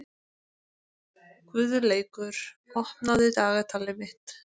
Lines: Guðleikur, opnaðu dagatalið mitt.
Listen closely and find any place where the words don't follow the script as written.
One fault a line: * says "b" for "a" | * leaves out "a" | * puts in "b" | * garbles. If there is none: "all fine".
all fine